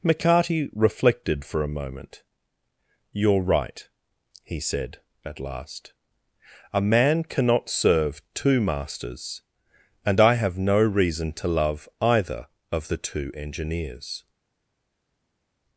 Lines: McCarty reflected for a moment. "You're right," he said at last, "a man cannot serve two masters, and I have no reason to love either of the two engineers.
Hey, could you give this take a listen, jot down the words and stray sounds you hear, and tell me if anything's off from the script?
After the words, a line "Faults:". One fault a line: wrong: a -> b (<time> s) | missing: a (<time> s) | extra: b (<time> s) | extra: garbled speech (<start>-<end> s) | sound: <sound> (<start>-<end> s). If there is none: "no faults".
McCarty reflected for a moment. "You're right," he said at last, "a man cannot serve two masters, and I have no reason to love either of the two engineers.
Faults:
no faults